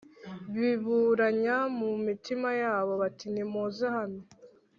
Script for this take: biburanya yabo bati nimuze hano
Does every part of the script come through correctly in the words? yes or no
no